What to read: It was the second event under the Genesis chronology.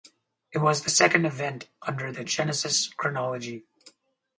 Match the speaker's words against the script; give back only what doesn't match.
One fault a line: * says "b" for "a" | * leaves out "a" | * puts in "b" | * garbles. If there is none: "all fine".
all fine